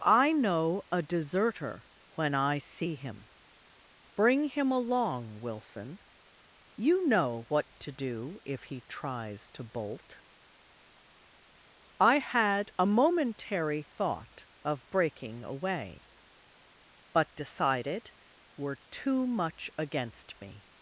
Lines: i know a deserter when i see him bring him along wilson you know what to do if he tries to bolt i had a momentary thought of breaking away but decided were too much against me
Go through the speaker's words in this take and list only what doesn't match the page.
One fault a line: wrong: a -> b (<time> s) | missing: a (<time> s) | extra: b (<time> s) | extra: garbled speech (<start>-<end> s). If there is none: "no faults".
no faults